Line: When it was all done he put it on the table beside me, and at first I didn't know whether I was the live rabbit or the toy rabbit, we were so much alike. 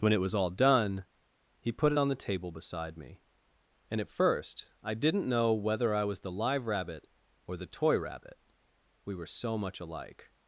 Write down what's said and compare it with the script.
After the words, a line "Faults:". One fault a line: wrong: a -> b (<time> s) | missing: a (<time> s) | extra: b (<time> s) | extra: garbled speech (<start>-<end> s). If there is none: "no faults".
When it was all done he put it on the table beside me, and at first I didn't know whether I was the live rabbit or the toy rabbit, we were so much alike.
Faults:
no faults